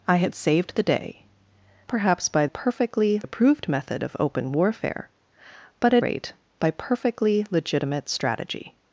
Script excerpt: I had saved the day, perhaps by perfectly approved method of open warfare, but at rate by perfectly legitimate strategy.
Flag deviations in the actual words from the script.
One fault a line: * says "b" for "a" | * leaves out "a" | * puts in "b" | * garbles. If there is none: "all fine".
all fine